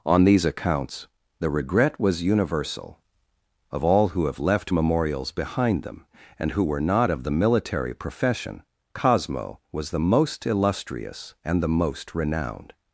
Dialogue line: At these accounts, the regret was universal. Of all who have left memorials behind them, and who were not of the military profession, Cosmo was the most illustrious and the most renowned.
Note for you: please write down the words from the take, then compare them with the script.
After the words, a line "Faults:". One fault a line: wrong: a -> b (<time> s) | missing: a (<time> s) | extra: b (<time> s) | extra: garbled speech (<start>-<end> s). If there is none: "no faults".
On these accounts, the regret was universal. Of all who have left memorials behind them, and who were not of the military profession, Cosmo was the most illustrious and the most renowned.
Faults:
wrong: At -> On (0.0 s)